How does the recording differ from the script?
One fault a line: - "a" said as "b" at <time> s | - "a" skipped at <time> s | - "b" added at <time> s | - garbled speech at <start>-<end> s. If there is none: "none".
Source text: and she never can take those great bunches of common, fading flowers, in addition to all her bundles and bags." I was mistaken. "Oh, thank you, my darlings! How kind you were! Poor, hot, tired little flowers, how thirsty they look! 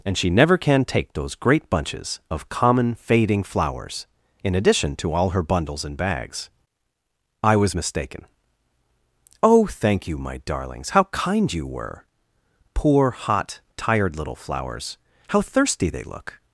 none